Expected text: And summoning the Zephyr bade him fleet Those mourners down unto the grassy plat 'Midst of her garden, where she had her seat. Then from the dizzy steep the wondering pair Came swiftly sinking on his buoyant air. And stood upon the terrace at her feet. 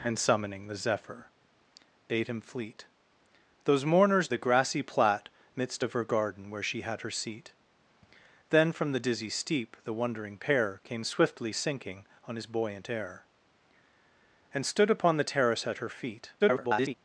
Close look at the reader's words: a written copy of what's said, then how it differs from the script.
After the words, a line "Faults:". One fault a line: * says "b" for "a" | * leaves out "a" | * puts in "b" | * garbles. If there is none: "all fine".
And summoning the Zephyr bade him fleet Those mourners the grassy plat 'Midst of her garden, where she had her seat. Then from the dizzy steep the wondering pair Came swiftly sinking on his buoyant air. And stood upon the terrace at her feet. [garbled]
Faults:
* leaves out "down unto"
* garbles